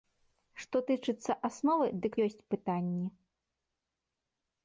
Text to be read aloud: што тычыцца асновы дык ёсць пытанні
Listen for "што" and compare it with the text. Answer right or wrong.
right